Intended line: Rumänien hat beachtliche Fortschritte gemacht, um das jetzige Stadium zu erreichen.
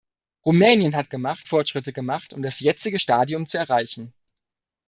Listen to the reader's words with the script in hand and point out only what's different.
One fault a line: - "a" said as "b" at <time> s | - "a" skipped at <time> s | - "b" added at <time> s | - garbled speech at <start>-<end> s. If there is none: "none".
- "beachtliche" said as "gemacht" at 1.1 s